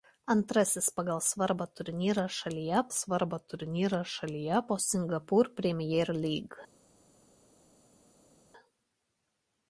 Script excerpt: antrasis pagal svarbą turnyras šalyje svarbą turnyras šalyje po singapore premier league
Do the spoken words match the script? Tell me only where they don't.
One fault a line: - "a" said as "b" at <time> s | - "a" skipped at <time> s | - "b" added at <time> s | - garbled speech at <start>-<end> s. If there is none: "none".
none